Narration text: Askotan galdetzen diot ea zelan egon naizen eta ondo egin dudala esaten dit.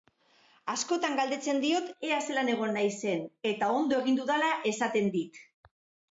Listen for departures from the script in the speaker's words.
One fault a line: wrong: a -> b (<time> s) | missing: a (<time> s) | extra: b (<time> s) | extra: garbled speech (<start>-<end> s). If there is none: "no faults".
no faults